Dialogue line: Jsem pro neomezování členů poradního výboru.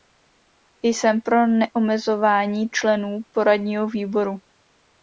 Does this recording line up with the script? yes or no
yes